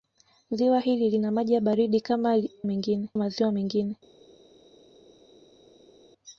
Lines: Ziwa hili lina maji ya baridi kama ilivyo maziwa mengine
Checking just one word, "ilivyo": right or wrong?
wrong